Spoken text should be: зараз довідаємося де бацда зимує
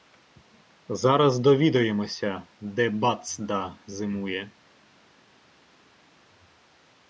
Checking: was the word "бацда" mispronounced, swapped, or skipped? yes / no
no